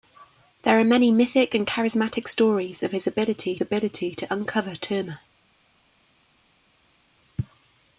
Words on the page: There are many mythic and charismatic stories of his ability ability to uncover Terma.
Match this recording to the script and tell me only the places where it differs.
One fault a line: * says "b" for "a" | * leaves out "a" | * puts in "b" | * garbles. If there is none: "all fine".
all fine